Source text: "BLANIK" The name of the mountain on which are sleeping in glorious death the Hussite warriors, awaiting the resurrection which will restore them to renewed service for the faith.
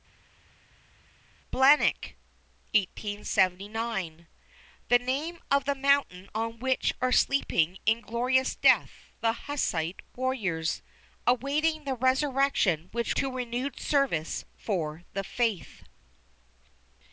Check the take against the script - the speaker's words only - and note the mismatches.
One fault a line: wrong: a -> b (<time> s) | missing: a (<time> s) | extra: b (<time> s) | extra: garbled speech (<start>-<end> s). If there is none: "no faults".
missing: will restore them (13.2 s)